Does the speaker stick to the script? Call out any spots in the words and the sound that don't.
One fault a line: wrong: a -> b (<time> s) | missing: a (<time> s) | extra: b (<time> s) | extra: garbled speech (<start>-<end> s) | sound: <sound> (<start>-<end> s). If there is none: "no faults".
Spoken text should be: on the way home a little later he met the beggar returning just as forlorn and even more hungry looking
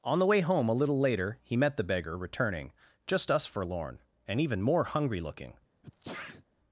wrong: as -> us (3.3 s)
sound: sneeze (5.8-6.4 s)